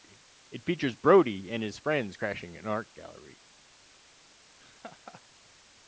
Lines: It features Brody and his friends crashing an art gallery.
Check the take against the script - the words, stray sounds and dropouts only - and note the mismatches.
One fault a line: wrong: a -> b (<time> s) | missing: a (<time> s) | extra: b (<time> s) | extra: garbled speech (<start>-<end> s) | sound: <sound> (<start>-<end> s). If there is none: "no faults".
sound: laugh (4.6-5.2 s)